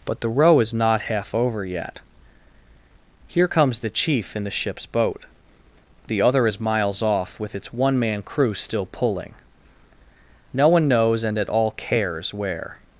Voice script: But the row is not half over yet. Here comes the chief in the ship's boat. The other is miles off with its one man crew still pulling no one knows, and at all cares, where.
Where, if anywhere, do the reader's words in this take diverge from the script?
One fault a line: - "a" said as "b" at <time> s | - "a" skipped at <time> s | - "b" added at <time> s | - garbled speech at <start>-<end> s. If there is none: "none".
none